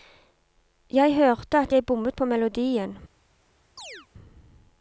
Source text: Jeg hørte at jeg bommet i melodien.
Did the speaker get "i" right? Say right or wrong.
wrong